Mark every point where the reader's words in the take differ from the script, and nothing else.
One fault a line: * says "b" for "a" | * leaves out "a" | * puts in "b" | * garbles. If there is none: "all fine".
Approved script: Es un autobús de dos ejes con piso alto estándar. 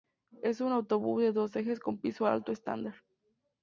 all fine